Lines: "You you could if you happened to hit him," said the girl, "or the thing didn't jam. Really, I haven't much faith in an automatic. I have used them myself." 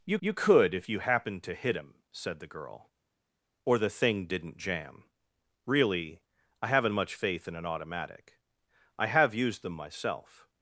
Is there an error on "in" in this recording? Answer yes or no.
no